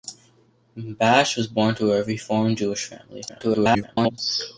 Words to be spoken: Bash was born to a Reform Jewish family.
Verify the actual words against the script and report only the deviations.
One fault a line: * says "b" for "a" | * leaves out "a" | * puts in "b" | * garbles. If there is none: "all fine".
* garbles